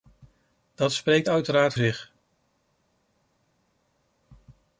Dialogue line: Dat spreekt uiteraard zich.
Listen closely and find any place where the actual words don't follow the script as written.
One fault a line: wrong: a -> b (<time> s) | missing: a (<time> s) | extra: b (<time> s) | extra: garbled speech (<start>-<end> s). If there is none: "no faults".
no faults